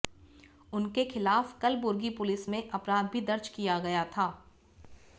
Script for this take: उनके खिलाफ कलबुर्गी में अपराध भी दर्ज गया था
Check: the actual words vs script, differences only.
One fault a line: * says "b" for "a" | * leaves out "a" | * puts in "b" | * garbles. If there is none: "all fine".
* puts in "पुलिस"
* puts in "किया"